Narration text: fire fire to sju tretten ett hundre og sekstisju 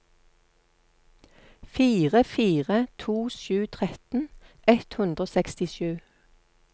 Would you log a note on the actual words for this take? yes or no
no